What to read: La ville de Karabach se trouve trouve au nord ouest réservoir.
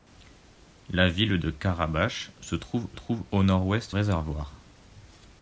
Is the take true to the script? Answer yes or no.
yes